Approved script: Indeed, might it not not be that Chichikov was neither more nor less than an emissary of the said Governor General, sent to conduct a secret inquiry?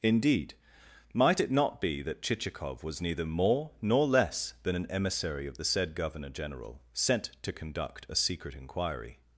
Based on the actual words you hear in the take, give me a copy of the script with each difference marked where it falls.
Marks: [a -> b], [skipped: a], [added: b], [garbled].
Indeed, might it not [skipped: not] be that Chichikov was neither more nor less than an emissary of the said Governor General, sent to conduct a secret inquiry?